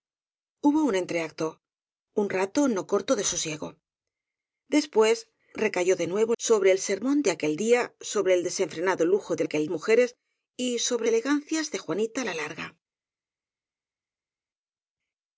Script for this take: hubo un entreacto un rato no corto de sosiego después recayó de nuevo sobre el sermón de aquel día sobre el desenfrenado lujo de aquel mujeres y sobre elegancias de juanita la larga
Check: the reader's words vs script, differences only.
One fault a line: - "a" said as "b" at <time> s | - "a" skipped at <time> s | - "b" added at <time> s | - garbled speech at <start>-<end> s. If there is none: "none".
none